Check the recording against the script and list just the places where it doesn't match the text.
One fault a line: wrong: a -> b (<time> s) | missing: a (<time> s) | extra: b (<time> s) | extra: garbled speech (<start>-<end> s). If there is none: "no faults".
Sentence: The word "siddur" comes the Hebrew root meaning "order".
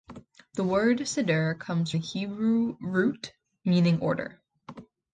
no faults